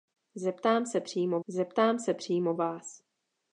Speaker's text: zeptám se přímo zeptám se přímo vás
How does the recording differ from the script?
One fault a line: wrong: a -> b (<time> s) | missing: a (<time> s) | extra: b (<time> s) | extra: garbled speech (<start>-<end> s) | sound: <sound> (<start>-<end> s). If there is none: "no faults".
no faults